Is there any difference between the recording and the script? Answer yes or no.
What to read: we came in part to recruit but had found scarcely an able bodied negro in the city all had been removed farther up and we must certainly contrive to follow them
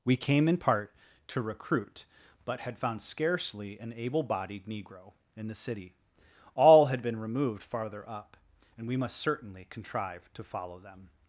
no